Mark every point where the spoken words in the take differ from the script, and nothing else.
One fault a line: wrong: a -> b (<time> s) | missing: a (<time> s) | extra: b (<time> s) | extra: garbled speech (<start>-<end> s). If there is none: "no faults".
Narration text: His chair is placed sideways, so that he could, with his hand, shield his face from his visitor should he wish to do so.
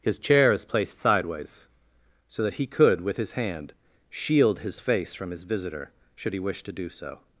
no faults